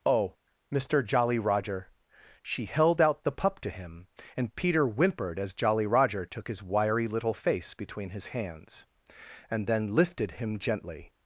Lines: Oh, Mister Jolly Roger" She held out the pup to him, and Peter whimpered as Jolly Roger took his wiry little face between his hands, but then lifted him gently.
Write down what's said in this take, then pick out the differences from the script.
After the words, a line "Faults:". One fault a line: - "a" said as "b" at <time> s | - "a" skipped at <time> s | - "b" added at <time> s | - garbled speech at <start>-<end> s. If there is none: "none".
Oh, Mister Jolly Roger" She held out the pup to him, and Peter whimpered as Jolly Roger took his wiry little face between his hands, and then lifted him gently.
Faults:
- "but" said as "and" at 9.5 s